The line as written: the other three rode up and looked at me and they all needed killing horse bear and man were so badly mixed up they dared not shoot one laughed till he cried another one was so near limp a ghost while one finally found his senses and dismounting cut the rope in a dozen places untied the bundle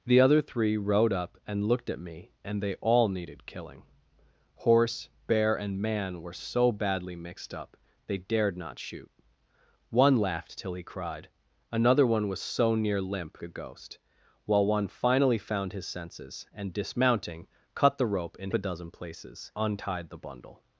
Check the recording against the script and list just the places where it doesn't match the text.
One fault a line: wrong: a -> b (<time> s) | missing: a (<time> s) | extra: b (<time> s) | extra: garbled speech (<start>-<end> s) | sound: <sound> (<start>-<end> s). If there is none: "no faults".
no faults